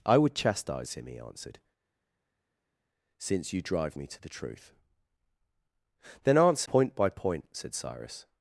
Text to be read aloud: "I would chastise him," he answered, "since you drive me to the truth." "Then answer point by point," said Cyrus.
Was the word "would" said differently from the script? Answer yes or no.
no